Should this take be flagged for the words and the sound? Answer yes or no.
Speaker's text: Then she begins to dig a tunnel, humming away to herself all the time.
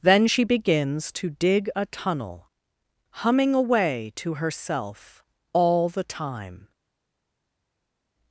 no